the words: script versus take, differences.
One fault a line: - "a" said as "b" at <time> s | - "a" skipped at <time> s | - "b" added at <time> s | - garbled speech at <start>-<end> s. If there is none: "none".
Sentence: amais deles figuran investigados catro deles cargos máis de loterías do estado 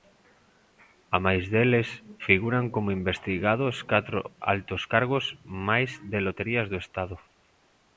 - "como" added at 2.7 s
- "deles" said as "altos" at 4.5 s